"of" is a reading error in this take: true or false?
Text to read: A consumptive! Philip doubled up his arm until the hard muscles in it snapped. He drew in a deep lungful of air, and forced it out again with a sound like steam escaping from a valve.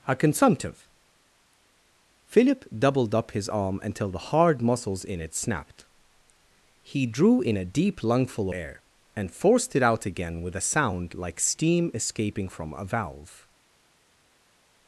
true